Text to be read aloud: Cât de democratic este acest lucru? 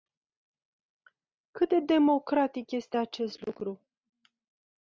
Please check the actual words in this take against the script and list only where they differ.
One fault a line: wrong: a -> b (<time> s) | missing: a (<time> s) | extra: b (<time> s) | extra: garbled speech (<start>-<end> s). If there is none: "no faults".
no faults